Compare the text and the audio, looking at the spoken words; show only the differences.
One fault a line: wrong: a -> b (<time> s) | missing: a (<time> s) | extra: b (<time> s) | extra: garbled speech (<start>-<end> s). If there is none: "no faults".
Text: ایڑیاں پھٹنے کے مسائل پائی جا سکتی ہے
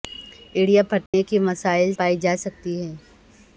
no faults